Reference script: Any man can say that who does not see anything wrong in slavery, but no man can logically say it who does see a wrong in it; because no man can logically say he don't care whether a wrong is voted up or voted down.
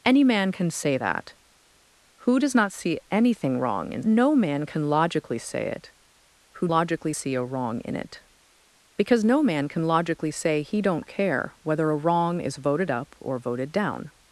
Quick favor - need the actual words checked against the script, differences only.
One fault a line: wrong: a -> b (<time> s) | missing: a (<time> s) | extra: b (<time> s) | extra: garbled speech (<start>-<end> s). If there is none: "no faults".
missing: slavery but (4.0 s)
wrong: does -> logically (6.7 s)